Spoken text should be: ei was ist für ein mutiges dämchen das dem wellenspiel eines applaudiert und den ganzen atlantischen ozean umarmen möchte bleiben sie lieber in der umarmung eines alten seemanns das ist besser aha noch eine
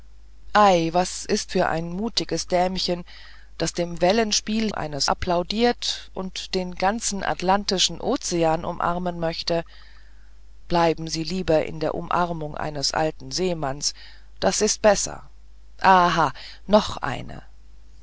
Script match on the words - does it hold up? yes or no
yes